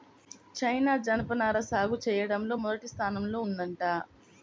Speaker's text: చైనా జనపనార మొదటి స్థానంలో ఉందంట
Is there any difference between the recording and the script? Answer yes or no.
yes